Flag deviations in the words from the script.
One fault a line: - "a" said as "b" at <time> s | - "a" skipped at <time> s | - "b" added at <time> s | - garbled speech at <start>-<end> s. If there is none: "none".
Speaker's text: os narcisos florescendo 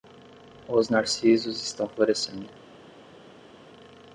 - "estão" added at 1.6 s